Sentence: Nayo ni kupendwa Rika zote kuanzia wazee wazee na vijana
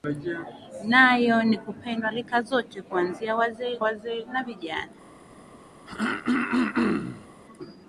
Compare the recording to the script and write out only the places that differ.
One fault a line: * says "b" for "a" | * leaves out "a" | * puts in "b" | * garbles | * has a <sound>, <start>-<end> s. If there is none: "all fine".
* has a throat clearing, 5.9-7.3 s